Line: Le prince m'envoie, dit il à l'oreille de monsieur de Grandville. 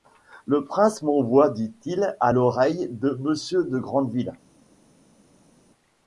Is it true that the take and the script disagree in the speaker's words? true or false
false